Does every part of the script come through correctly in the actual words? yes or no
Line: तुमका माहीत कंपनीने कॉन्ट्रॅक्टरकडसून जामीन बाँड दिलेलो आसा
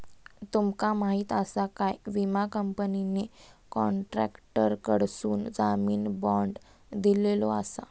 no